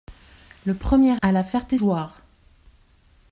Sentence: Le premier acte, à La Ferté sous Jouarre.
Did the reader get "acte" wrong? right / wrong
wrong